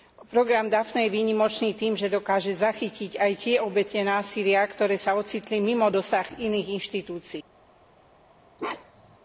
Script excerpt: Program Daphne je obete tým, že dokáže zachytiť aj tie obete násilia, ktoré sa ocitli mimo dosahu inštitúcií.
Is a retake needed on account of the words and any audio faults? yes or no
yes